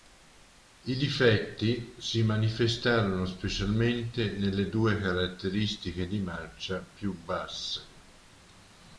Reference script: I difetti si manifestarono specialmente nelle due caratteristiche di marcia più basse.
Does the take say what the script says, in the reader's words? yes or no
yes